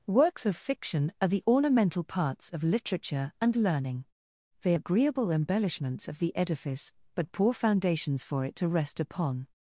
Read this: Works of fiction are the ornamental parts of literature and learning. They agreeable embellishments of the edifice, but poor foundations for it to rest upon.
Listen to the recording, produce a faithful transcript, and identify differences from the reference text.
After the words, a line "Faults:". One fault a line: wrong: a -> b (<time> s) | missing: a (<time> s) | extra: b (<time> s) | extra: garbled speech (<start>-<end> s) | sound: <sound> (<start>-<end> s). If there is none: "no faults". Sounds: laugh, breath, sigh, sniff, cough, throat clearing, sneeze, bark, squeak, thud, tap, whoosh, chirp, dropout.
Works of fiction are the ornamental parts of literature and learning. They agreeable embellishments of the edifice, but poor foundations for it to rest upon.
Faults:
no faults